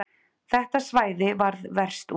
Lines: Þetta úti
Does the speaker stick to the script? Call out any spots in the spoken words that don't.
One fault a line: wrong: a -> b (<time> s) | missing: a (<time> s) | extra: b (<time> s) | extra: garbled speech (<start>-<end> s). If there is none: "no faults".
extra: svæði varð verst (0.9 s)